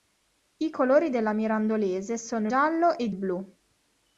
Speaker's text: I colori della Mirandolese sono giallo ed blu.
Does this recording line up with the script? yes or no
yes